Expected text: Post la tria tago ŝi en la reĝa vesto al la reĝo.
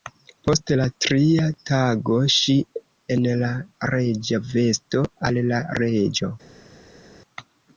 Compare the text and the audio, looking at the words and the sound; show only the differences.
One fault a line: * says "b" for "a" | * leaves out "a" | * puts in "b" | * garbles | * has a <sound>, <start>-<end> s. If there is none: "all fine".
all fine